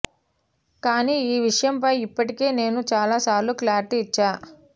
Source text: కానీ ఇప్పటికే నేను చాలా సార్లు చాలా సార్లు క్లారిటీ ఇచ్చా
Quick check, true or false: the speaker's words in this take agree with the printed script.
false